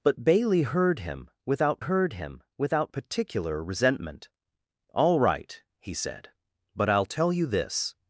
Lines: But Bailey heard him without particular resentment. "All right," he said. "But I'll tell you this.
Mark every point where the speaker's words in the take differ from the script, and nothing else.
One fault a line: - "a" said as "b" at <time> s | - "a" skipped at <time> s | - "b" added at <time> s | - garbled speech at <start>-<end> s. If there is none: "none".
- "heard him without" added at 1.8 s